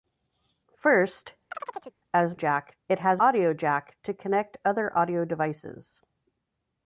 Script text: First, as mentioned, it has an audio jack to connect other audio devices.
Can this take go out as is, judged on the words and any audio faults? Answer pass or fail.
fail